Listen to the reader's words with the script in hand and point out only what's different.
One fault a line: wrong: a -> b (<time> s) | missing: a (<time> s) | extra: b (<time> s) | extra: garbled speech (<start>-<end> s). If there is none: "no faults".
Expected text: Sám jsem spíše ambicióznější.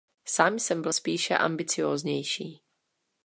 extra: byl (0.8 s)